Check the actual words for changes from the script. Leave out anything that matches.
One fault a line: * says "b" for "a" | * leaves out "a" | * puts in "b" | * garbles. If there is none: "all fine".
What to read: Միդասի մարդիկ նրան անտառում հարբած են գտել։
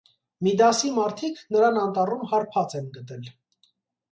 all fine